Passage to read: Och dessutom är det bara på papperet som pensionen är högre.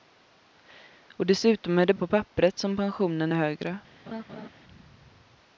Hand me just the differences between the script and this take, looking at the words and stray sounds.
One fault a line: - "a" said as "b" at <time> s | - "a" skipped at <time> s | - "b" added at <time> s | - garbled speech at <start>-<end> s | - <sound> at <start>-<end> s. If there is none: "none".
- "bara" skipped at 1.9 s
- laugh at 4.1-4.5 s